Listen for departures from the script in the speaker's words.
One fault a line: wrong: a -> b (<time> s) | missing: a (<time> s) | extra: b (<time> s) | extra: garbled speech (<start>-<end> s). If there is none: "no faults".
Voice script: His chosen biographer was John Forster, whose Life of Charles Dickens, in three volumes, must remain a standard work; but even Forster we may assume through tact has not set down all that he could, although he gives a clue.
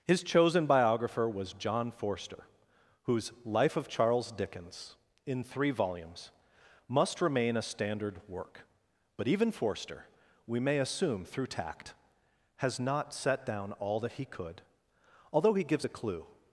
no faults